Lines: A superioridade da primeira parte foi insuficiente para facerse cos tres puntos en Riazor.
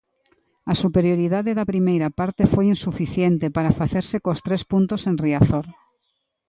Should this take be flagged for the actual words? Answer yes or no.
no